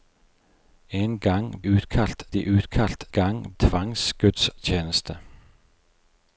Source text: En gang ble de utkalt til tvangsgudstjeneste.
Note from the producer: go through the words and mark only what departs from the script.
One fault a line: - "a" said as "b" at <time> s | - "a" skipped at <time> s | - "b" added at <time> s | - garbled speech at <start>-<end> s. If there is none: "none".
- "ble" said as "utkalt" at 1.7 s
- "til" said as "gang" at 3.1 s